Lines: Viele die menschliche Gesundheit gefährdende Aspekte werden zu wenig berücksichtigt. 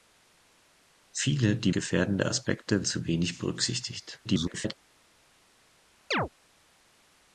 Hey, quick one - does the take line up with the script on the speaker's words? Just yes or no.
no